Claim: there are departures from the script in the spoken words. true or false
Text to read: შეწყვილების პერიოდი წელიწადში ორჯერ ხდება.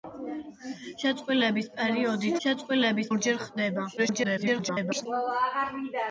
true